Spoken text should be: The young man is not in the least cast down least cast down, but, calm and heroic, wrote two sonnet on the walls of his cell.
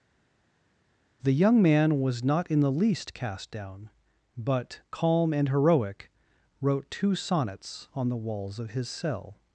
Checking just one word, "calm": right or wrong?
right